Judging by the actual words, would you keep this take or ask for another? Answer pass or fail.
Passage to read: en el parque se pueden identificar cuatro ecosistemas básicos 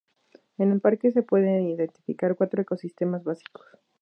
pass